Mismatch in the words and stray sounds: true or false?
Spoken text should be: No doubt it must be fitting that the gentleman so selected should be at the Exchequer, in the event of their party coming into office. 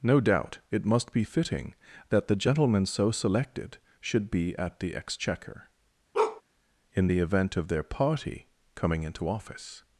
true